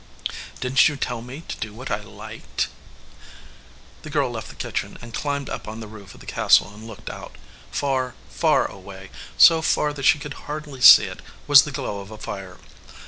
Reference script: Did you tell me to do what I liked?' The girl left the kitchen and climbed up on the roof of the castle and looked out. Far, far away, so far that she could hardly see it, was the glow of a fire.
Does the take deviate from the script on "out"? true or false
false